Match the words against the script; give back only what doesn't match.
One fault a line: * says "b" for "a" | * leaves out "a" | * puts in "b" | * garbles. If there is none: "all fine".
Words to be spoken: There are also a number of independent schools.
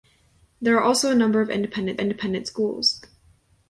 * puts in "independent"